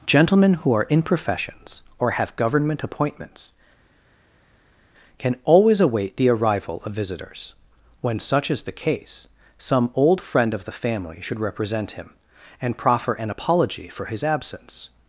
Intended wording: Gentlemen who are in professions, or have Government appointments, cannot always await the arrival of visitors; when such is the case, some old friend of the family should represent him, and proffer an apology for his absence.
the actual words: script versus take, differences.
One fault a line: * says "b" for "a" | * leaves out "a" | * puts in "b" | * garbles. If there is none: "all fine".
* says "can" for "cannot"